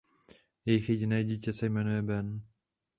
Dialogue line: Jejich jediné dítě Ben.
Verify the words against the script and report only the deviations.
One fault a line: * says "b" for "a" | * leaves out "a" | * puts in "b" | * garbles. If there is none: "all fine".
* puts in "se jmenuje"